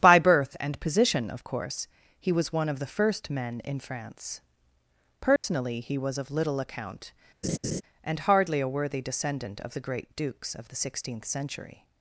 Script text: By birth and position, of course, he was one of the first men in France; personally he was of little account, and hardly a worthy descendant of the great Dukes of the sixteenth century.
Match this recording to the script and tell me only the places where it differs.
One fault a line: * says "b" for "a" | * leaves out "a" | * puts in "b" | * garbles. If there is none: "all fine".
all fine